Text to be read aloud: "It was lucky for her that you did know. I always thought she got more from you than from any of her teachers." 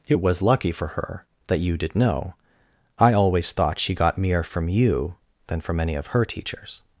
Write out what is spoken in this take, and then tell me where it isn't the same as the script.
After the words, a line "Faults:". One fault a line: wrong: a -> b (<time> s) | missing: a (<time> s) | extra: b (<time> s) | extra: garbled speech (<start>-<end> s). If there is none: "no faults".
"It was lucky for her that you did know. I always thought she got mere from you than from any of her teachers."
Faults:
wrong: more -> mere (4.2 s)